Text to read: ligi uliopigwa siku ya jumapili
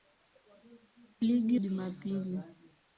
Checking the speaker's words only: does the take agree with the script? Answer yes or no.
no